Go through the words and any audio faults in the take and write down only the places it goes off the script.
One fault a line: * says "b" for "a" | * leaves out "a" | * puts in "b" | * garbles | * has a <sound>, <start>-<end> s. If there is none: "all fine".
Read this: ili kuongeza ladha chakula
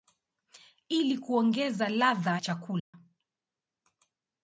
* has a dropout, 2.8-2.9 s